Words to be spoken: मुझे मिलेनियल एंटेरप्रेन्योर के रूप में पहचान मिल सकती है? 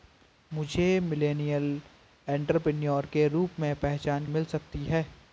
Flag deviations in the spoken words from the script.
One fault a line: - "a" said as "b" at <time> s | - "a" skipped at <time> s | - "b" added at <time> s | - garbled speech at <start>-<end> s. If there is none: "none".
none